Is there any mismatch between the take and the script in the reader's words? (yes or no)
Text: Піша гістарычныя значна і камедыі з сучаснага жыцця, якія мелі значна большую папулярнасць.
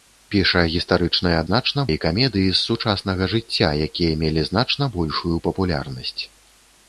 no